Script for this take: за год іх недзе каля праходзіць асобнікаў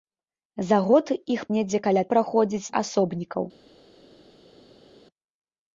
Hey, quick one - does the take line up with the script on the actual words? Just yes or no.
yes